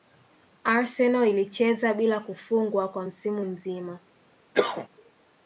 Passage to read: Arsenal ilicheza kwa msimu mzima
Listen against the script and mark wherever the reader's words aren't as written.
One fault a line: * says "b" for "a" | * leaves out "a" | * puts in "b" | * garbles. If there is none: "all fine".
* puts in "bila kufungwa"